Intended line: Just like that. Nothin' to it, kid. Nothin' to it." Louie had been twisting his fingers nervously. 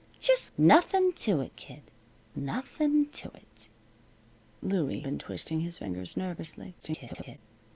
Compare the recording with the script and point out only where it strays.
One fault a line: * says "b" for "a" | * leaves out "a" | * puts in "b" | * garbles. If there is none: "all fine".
* leaves out "like that"
* leaves out "had"
* garbles